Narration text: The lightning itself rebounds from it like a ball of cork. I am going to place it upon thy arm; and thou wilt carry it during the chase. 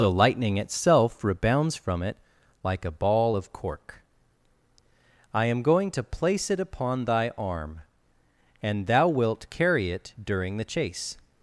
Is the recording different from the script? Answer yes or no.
no